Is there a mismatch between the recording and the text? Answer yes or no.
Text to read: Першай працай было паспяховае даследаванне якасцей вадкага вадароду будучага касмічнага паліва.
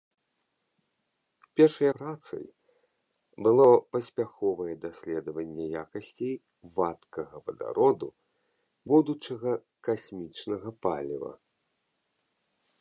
no